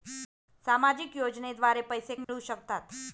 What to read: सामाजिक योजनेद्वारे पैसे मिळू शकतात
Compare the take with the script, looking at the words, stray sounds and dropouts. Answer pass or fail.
fail